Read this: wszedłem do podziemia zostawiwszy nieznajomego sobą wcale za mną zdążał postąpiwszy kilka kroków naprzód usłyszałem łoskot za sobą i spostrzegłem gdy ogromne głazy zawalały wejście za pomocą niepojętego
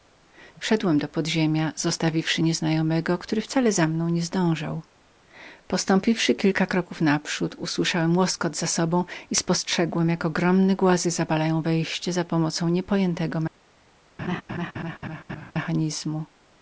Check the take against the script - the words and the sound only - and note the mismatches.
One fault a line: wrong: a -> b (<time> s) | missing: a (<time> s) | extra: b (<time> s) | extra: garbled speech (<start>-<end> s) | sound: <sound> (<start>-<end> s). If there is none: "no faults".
wrong: sobą -> który (3.2 s)
extra: nie (4.1 s)
wrong: gdy -> jak (10.1 s)
sound: laugh (14.2-15.5 s)